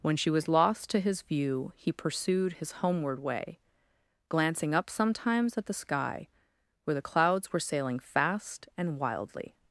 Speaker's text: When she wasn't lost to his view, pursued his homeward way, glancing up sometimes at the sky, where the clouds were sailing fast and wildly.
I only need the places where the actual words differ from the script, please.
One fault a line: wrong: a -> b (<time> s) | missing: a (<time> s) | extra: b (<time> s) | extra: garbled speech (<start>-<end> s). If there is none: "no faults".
wrong: wasn't -> was (0.3 s)
extra: he (1.8 s)